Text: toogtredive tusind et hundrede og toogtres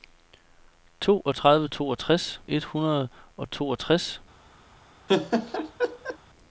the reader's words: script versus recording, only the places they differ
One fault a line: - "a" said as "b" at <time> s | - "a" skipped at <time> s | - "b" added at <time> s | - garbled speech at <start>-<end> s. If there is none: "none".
- "tusind" said as "toogtres" at 1.7 s